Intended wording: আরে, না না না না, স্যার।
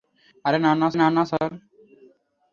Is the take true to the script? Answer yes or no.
yes